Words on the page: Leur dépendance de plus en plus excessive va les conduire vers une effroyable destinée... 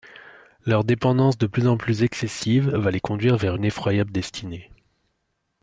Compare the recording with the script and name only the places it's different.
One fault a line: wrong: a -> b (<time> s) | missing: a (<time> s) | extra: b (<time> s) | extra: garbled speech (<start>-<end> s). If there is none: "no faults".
no faults